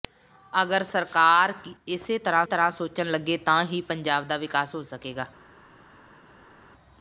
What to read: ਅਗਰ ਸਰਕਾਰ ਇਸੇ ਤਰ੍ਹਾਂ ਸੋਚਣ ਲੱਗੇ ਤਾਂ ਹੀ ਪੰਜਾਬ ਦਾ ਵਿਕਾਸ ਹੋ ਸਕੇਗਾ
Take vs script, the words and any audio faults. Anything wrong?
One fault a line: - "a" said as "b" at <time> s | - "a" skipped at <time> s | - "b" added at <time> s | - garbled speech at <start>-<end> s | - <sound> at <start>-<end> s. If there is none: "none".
- "ਤਰ੍ਹਾਂ" added at 2.4 s